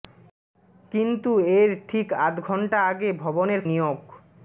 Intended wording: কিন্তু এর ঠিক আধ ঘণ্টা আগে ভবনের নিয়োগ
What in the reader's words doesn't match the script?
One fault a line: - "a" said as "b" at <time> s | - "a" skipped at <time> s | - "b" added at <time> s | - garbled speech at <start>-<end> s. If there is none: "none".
none